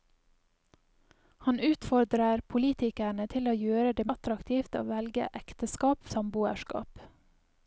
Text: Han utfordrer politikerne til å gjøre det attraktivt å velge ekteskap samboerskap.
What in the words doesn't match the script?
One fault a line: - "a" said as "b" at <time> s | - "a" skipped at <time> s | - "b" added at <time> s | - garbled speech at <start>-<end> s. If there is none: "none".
none